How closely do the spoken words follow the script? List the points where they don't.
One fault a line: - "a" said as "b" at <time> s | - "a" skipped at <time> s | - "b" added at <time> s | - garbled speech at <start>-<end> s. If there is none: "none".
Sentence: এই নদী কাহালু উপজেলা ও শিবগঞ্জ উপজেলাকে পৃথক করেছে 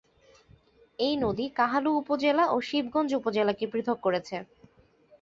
none